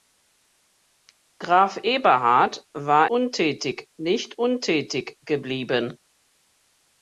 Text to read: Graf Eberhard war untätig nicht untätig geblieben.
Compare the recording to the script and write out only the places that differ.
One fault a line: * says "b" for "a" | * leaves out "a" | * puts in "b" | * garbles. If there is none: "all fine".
all fine